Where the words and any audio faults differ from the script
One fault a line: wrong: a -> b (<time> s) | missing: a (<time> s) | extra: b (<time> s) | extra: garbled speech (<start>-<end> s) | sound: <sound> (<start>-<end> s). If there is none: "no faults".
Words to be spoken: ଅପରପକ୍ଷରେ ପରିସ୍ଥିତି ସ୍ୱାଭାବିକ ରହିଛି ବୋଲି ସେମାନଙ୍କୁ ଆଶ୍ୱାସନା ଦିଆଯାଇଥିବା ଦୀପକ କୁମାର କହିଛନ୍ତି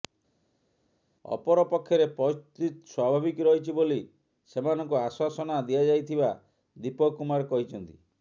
no faults